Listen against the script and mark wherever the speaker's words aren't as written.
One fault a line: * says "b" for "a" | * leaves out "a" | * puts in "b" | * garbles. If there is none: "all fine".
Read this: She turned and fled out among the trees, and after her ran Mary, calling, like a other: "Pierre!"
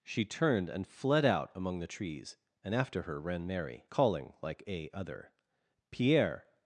all fine